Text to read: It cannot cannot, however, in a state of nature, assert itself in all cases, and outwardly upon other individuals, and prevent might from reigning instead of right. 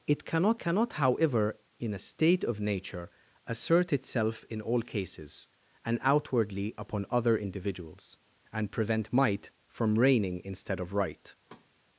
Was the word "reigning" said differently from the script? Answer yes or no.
no